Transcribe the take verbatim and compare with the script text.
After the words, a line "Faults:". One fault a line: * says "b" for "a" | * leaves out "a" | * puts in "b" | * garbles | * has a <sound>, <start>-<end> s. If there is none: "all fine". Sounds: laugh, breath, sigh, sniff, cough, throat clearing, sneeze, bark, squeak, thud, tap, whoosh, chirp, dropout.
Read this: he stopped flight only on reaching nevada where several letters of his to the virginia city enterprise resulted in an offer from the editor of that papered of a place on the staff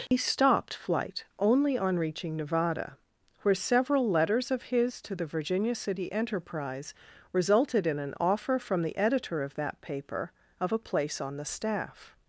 he stopped flight only on reaching nevada where several letters of his to the virginia city enterprise resulted in an offer from the editor of that paper of a place on the staff
Faults:
* has a dropout, 0.1-0.1 s
* says "paper" for "papered"